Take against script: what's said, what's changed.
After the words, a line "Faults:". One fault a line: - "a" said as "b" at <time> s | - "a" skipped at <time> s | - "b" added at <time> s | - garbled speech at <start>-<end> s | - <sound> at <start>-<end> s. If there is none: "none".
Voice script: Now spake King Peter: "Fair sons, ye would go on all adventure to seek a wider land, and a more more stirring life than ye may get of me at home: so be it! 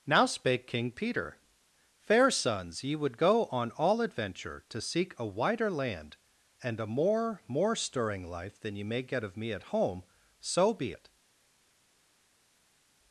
Now spake King Peter: "Fair sons, ye would go on all adventure to seek a wider land, and a more more stirring life than ye may get of me at home: so be it!
Faults:
none